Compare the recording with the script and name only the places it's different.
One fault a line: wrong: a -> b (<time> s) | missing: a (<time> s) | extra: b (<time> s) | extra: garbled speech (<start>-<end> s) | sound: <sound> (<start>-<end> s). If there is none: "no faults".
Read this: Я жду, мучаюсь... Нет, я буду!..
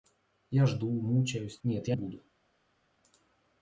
no faults